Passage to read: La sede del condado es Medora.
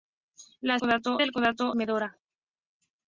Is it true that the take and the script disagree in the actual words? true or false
true